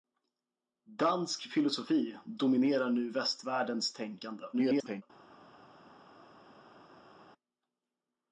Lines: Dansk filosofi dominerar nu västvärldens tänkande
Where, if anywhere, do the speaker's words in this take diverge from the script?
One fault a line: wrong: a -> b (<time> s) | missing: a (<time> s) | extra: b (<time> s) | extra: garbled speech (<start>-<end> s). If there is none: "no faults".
extra: garbled speech (4.5-5.0 s)